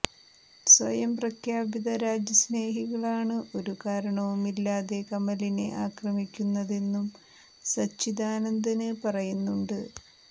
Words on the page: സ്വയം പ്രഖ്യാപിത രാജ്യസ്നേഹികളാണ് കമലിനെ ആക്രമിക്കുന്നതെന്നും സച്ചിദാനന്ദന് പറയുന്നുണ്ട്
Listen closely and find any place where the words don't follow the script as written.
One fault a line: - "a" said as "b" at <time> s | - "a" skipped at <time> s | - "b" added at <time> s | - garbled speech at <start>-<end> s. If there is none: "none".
- "ഒരു കാരണവുമില്ലാതെ" added at 3.6 s